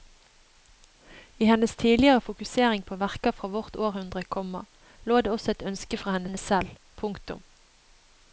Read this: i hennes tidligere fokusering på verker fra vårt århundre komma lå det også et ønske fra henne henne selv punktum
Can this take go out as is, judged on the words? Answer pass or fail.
pass